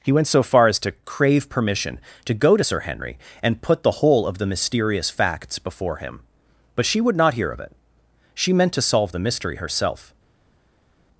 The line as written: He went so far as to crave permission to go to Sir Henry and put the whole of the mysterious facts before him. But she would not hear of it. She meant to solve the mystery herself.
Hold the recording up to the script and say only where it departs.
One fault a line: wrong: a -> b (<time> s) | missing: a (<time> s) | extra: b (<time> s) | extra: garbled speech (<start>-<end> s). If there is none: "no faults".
no faults